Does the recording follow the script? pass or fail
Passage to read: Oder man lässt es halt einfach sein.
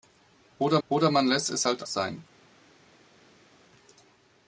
fail